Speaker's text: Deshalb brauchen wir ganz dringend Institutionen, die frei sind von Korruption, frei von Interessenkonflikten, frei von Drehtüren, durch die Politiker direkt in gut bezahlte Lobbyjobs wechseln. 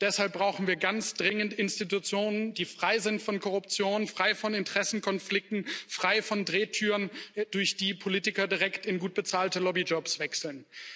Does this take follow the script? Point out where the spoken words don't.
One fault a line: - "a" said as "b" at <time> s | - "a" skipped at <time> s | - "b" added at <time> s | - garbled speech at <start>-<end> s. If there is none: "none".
none